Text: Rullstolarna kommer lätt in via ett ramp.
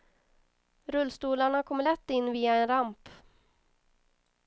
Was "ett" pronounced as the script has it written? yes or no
no